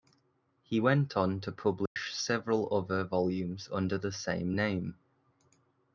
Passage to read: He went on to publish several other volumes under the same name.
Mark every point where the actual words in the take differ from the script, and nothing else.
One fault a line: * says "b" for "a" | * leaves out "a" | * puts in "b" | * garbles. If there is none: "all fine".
all fine